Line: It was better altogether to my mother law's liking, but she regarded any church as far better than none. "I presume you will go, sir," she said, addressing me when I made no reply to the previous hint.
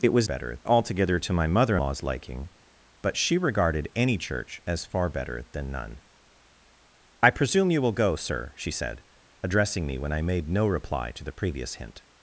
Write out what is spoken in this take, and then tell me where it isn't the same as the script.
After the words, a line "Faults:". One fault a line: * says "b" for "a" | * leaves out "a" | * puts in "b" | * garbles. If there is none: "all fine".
It was better altogether to my mother law's liking, but she regarded any church as far better than none. "I presume you will go, sir," she said, addressing me when I made no reply to the previous hint.
Faults:
all fine